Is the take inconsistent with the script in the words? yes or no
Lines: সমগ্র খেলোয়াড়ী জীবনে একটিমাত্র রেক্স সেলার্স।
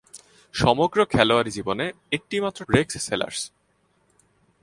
no